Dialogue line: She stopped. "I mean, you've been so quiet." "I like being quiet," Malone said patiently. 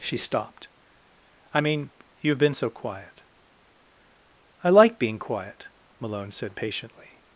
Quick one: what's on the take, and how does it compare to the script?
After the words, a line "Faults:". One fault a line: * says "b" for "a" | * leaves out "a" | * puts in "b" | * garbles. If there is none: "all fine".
She stopped. "I mean, you've been so quiet." "I like being quiet," Malone said patiently.
Faults:
all fine